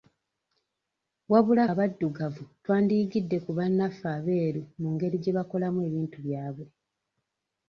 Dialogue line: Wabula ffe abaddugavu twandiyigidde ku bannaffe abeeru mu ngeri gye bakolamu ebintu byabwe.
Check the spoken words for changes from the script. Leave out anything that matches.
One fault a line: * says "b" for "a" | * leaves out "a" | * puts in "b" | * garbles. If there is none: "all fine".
* leaves out "ffe"